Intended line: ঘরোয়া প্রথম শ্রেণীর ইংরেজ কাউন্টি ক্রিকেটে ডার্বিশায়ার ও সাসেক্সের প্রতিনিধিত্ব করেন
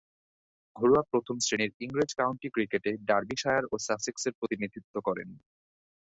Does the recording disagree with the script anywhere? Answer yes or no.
no